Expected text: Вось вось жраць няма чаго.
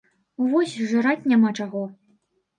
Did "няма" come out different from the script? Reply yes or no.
no